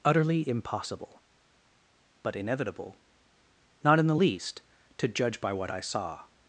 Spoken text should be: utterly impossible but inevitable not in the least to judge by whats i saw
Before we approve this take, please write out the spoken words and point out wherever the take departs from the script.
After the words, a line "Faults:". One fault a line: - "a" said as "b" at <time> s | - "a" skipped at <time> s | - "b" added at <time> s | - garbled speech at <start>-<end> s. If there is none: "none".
utterly impossible but inevitable not in the least to judge by what i saw
Faults:
- "whats" said as "what" at 5.5 s